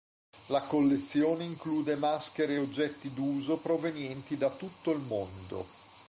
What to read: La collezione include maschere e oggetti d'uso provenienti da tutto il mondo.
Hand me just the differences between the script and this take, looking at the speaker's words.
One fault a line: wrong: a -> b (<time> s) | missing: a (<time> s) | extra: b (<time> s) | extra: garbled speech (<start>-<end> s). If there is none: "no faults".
no faults